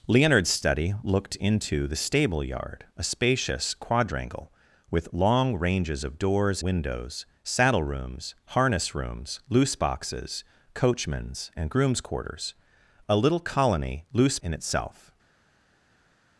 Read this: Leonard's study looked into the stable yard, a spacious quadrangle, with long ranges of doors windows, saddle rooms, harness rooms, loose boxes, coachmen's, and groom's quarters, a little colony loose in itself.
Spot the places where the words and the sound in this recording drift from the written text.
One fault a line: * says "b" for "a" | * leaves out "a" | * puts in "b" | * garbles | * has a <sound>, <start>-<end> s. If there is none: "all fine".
all fine